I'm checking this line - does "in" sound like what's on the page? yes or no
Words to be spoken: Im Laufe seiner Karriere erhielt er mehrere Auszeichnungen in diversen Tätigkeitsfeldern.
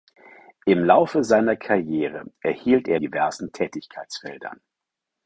no